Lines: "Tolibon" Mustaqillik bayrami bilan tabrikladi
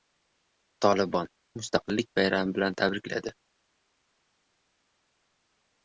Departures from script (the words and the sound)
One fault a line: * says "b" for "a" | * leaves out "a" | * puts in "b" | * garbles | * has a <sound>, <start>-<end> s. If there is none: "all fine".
all fine